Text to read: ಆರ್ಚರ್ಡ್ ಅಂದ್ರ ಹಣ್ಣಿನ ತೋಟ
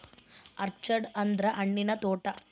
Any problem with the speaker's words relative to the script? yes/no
no